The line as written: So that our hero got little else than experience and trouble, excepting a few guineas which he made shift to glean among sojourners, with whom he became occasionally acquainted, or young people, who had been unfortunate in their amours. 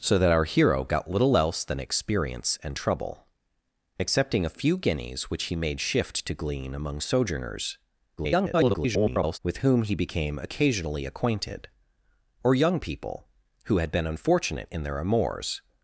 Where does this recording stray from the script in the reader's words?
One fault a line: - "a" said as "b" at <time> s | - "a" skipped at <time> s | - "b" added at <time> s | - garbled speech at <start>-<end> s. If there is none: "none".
- garbled speech at 8.2-9.4 s